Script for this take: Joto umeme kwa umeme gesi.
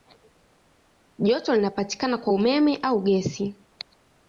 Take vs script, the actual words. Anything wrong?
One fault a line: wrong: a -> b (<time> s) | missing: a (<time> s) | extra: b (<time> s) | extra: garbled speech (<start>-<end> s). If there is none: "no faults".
wrong: umeme -> linapatikana (1.6 s)
extra: au (2.8 s)